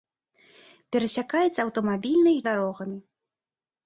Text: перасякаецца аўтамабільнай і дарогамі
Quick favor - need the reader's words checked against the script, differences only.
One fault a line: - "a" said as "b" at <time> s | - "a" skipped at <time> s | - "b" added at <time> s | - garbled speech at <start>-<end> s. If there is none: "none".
none